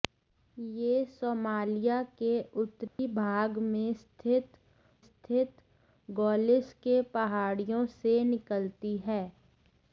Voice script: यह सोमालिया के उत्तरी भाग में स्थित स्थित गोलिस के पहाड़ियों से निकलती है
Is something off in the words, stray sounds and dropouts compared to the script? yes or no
yes